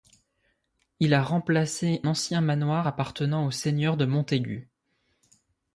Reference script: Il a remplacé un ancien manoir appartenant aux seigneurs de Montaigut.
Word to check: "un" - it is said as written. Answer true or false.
false